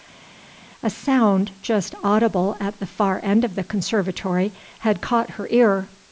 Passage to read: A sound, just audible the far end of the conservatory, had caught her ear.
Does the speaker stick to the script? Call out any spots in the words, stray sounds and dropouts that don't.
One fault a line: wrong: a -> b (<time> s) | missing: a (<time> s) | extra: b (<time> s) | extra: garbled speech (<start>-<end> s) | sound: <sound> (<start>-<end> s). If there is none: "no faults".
extra: at (2.6 s)